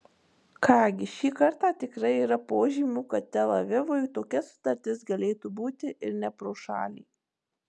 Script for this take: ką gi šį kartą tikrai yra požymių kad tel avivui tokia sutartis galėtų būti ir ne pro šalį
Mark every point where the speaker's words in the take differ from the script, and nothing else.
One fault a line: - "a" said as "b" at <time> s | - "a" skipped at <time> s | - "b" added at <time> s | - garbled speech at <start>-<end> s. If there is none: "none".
none